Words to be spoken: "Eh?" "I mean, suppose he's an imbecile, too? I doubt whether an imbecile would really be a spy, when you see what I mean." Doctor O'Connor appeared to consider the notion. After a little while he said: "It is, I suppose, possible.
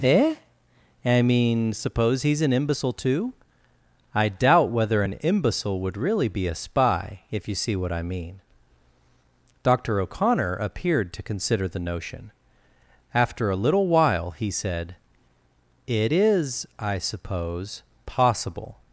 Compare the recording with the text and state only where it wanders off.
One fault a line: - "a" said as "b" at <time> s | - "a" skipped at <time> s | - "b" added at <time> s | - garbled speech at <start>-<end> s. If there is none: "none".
- "when" said as "if" at 7.3 s